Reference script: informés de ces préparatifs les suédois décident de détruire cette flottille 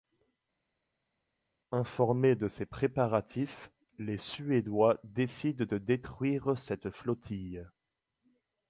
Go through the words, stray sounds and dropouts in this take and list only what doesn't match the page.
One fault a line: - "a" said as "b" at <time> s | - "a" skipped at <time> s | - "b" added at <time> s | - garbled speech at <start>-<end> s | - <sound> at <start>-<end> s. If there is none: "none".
none